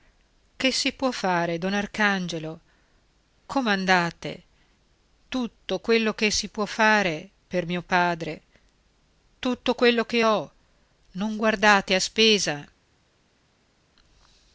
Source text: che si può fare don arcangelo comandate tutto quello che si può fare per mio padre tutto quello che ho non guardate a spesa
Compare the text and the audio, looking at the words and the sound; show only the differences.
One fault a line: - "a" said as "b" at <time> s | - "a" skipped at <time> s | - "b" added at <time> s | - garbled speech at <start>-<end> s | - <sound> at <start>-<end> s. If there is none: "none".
none